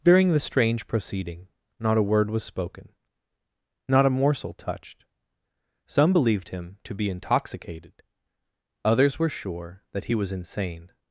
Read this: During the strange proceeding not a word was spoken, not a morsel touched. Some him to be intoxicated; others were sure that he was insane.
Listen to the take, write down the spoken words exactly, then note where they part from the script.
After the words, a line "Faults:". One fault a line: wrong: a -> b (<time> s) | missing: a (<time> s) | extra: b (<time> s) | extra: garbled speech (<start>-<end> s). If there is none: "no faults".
During the strange proceeding not a word was spoken, not a morsel touched. Some believed him to be intoxicated; others were sure that he was insane.
Faults:
extra: believed (6.1 s)